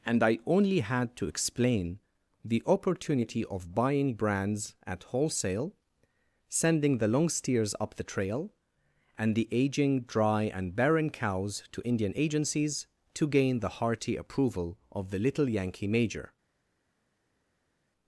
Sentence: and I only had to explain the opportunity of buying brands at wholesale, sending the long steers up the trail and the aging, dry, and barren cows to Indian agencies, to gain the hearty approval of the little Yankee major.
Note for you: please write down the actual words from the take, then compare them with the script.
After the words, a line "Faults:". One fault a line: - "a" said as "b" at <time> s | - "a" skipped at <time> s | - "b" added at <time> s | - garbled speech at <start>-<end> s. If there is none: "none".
and I only had to explain the opportunity of buying brands at wholesale, sending the long steers up the trail and the aging, dry, and barren cows to Indian agencies, to gain the hearty approval of the little Yankee major.
Faults:
none